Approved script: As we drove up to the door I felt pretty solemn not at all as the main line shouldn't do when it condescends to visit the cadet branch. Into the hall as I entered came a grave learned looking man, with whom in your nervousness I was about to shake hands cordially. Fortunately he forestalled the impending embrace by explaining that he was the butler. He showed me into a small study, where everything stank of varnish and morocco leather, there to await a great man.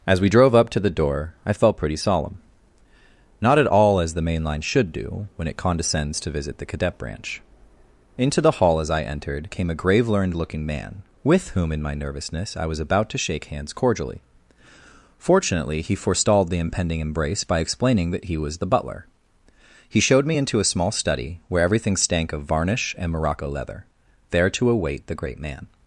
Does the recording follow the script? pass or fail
fail